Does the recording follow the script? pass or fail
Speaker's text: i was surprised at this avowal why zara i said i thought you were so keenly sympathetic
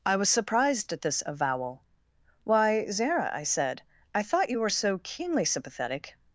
pass